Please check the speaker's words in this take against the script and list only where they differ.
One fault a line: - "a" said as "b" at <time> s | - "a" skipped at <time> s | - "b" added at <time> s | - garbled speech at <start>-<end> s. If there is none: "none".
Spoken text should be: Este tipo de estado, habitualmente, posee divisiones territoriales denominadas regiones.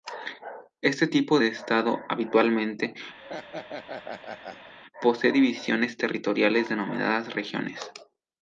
none